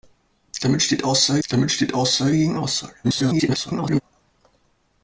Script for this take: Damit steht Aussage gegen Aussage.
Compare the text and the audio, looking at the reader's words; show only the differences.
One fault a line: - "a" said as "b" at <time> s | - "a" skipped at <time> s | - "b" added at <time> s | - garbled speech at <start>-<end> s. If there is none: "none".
- "damit steht Aussage" added at 1.5 s
- garbled speech at 3.0-4.0 s